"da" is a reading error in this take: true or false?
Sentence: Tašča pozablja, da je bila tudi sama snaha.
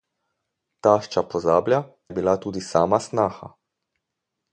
true